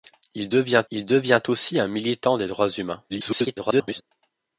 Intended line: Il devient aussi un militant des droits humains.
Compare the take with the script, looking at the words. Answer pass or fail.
fail